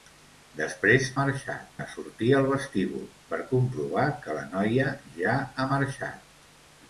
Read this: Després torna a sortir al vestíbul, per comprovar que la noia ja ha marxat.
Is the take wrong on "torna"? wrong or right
wrong